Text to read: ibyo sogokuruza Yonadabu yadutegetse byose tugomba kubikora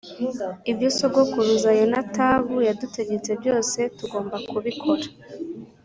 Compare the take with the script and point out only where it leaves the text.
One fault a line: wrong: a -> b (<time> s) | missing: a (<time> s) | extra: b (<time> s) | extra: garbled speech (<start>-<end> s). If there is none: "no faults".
no faults